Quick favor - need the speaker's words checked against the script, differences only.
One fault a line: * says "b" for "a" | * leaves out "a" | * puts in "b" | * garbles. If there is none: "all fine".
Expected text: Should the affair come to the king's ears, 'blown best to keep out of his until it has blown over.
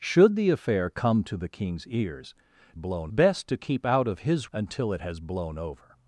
all fine